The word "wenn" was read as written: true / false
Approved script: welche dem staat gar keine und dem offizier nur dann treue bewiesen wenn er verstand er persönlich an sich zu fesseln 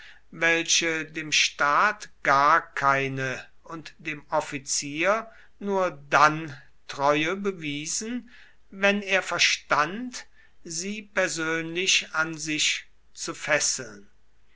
true